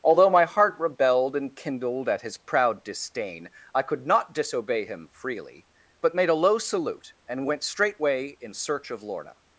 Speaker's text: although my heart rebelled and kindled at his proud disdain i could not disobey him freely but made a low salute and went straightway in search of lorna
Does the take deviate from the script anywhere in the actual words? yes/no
no